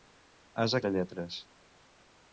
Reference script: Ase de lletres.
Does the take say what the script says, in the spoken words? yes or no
yes